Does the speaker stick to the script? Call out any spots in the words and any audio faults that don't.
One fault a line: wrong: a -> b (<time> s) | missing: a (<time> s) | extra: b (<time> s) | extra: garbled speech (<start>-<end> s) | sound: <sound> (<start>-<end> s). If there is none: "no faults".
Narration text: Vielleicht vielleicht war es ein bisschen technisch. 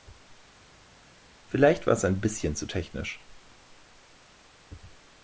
missing: vielleicht (1.9 s)
extra: zu (2.5 s)